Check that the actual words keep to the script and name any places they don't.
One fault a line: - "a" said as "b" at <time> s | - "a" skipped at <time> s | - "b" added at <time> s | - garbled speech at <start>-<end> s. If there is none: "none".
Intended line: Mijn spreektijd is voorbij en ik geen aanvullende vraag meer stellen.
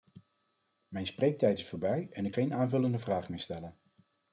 none